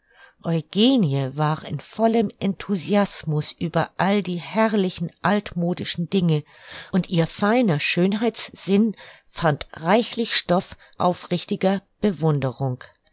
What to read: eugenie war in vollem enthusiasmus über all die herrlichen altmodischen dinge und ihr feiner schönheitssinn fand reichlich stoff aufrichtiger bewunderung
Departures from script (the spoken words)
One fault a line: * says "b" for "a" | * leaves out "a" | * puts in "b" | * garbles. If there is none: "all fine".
all fine